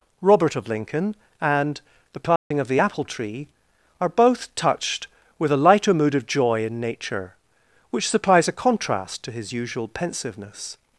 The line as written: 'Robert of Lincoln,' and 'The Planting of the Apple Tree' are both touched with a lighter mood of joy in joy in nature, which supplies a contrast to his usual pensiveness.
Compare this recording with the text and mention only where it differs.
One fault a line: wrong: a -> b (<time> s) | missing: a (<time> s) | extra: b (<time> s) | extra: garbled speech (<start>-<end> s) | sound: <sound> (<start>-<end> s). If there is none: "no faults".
sound: dropout (2.4-2.5 s)
missing: joy in (6.8 s)